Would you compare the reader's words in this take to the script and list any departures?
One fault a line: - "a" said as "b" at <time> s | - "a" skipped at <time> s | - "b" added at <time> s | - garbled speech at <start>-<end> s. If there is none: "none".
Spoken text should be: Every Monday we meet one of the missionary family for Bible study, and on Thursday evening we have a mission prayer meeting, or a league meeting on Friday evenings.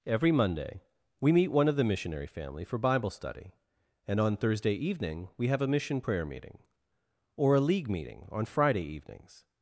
none